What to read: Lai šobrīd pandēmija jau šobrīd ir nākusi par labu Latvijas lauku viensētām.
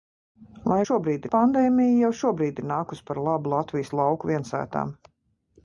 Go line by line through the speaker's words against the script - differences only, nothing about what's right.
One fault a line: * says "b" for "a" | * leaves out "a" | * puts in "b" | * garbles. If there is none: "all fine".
all fine